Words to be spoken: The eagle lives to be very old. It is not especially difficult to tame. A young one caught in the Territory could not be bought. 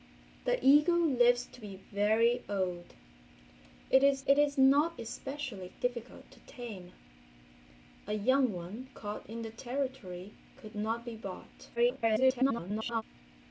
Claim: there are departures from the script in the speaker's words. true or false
true